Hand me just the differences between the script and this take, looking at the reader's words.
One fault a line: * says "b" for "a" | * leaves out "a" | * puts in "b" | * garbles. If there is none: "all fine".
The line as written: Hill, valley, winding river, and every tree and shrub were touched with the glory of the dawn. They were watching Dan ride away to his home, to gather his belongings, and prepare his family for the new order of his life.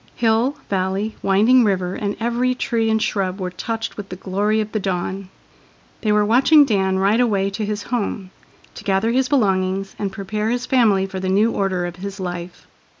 all fine